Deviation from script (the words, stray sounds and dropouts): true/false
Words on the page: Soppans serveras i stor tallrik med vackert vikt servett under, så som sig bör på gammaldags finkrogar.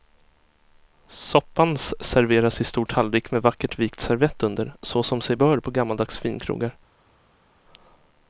false